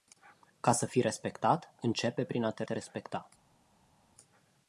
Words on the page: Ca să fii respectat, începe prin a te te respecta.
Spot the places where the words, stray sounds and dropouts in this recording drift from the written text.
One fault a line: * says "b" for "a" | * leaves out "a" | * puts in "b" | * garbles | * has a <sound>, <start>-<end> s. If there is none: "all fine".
all fine